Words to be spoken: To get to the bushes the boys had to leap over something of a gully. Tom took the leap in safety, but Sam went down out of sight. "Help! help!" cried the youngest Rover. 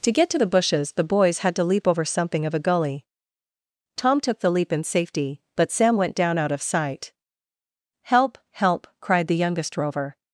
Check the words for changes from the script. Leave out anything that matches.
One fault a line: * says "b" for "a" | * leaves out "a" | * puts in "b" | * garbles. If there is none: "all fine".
all fine